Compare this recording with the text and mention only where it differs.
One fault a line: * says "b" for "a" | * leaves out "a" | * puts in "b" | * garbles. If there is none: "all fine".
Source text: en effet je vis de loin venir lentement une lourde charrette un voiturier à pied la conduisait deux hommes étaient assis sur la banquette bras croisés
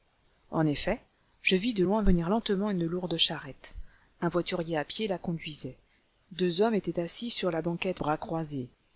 all fine